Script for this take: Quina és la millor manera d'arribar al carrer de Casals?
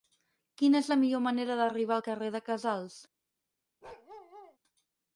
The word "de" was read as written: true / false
true